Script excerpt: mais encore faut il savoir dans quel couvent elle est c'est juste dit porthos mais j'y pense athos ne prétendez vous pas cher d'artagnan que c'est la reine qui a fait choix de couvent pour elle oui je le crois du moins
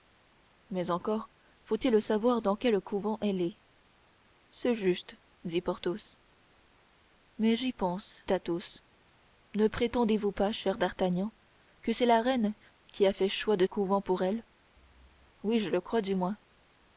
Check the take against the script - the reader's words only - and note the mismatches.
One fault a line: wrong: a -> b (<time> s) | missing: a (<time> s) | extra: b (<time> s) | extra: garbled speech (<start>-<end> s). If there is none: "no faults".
no faults